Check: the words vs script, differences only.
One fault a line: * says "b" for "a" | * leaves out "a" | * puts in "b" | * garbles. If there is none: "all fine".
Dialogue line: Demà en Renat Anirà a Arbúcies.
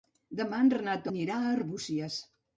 all fine